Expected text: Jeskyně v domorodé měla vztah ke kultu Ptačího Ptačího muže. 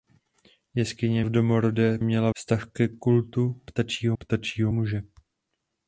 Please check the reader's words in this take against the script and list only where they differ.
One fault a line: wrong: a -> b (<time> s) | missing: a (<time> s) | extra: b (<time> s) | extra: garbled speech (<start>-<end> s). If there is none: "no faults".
no faults